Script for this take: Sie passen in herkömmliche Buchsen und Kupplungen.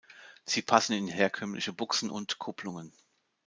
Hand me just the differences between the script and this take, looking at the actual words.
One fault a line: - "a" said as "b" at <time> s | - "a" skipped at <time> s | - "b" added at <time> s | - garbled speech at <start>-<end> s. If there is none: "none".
none